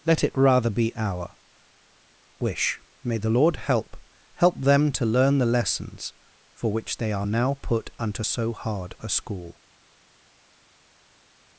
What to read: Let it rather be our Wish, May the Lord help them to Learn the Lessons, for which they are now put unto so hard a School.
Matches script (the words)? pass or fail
fail